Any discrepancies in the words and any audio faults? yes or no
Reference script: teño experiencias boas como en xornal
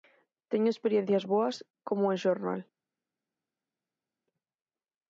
no